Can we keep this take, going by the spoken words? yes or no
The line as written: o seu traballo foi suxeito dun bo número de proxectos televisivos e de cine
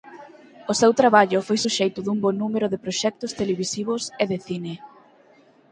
yes